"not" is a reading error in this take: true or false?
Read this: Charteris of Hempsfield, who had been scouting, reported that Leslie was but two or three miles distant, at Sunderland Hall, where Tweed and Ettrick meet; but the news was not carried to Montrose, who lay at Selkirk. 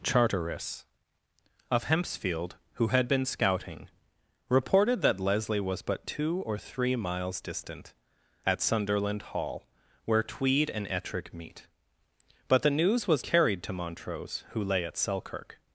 true